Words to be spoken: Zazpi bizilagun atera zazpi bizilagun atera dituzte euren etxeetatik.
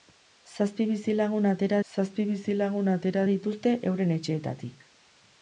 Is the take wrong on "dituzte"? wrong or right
right